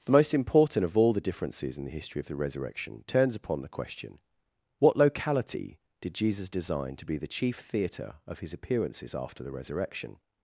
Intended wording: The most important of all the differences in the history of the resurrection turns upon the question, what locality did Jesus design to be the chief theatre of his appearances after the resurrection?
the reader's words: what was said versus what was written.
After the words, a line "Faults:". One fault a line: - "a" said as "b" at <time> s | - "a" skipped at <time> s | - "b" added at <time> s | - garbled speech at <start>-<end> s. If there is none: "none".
The most important of all the differences in the history of the resurrection turns upon the question, what locality did Jesus design to be the chief theatre of his appearances after the resurrection?
Faults:
none